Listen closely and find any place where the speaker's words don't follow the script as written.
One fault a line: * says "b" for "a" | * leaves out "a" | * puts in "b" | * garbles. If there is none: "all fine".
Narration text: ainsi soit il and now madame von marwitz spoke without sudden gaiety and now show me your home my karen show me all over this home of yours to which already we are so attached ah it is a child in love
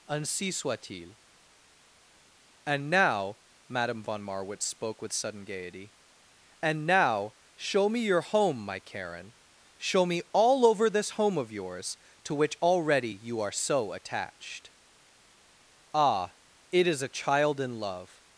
* says "with" for "without"
* says "you" for "we"